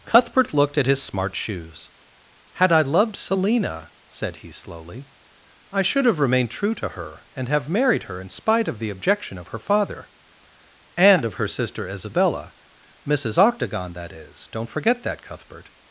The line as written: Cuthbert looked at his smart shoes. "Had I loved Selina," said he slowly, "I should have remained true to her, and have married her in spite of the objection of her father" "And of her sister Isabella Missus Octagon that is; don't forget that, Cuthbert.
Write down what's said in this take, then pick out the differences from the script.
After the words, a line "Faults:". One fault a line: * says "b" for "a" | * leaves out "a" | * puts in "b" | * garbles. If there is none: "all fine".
Cuthbert looked at his smart shoes. "Had I loved Selina," said he slowly, "I should have remained true to her, and have married her in spite of the objection of her father" "And of her sister Isabella Missus Octagon that is; don't forget that, Cuthbert.
Faults:
all fine